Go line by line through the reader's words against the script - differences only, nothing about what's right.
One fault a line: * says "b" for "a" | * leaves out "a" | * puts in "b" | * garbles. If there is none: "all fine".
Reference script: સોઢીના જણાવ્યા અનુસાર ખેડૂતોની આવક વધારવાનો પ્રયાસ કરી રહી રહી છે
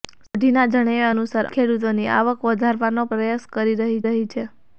all fine